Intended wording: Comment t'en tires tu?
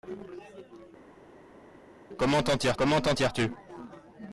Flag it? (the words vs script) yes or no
yes